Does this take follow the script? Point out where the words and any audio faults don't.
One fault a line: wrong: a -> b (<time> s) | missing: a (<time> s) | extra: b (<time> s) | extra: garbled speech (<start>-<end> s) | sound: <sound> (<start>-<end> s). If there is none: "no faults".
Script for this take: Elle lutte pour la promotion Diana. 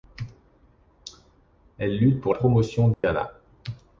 missing: la (2.3 s)
sound: dropout (2.9-3.0 s)